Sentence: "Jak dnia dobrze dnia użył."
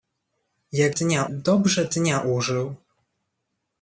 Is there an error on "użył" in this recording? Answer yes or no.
no